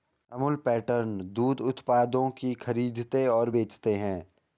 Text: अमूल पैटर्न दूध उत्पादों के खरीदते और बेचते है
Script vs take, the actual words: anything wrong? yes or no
yes